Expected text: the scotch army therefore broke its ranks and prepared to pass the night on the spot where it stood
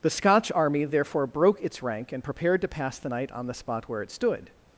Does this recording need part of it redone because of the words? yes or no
yes